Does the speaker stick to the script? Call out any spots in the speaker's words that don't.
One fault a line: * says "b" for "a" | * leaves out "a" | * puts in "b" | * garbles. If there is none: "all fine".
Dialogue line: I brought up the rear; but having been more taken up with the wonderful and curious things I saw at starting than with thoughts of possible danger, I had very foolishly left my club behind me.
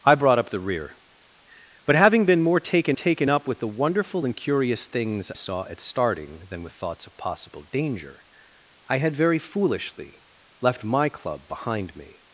* puts in "taken"
* leaves out "I"